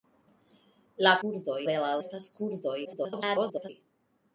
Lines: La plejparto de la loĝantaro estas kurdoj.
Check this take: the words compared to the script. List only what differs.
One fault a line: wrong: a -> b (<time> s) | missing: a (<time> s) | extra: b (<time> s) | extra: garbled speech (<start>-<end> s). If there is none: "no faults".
wrong: plejparto -> kurdoj (1.2 s)
missing: loĝantaro (1.9 s)
extra: garbled speech (2.8-3.7 s)